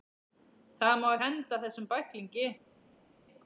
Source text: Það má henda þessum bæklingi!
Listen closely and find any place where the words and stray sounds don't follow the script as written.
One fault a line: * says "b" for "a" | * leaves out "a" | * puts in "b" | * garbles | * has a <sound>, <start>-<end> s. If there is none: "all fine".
all fine